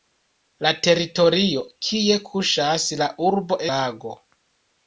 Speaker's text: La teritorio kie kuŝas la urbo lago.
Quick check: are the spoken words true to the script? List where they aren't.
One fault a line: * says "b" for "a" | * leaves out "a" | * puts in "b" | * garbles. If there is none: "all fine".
all fine